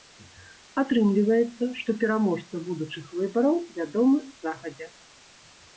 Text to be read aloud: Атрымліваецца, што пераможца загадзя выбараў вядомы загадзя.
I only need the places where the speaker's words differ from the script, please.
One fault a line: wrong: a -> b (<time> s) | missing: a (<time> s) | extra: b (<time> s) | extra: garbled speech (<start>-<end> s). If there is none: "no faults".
wrong: загадзя -> будучых (2.7 s)